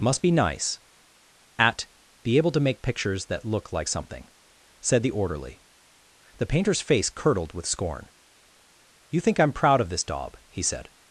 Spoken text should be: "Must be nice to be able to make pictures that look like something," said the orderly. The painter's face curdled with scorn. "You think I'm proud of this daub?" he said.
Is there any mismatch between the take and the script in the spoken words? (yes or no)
yes